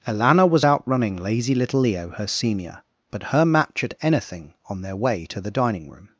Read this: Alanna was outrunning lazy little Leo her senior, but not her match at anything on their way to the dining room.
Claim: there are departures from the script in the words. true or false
true